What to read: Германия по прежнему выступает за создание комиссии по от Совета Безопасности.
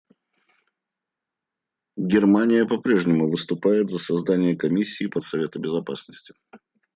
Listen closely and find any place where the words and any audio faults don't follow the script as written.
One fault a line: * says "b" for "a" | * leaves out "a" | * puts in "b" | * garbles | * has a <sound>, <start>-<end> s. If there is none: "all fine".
all fine